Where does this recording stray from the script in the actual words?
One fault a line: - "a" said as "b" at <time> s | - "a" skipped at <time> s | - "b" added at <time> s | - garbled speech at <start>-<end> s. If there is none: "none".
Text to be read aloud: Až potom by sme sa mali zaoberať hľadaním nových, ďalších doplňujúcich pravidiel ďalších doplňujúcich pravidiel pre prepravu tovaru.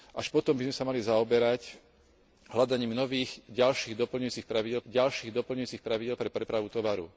none